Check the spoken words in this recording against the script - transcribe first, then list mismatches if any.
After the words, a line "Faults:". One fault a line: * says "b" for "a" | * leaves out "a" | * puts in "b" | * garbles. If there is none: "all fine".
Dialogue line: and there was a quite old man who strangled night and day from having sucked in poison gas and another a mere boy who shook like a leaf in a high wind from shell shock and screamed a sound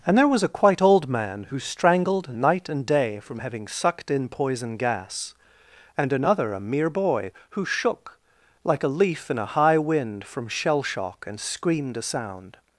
and there was a quite old man who strangled night and day from having sucked in poison gas and another a mere boy who shook like a leaf in a high wind from shell shock and screamed a sound
Faults:
all fine